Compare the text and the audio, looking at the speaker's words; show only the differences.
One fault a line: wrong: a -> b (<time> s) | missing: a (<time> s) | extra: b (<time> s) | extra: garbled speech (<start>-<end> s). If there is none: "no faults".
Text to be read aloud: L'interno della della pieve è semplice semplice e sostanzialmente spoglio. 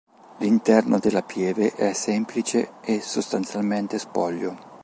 missing: della (1.2 s)
missing: semplice (2.7 s)